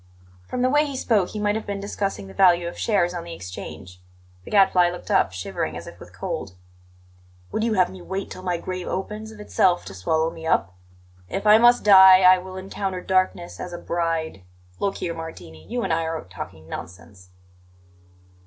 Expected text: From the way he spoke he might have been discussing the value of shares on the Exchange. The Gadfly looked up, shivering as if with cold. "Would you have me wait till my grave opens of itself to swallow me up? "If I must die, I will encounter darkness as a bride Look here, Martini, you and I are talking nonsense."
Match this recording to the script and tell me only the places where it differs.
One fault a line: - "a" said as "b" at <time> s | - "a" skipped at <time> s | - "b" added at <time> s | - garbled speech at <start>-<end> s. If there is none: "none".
none